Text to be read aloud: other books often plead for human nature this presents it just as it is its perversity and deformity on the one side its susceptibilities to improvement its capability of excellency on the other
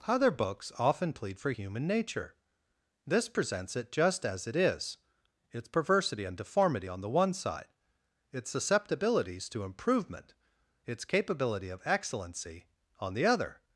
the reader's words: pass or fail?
pass